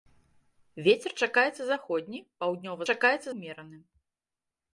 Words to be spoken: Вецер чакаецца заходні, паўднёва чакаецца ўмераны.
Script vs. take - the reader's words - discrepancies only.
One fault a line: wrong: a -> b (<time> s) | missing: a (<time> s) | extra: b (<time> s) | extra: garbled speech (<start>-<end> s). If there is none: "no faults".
no faults